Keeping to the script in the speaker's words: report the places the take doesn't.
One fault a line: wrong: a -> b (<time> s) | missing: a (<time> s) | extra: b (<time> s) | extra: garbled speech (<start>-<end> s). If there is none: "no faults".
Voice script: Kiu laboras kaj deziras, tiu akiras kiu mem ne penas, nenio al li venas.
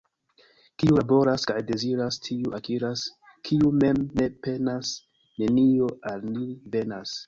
no faults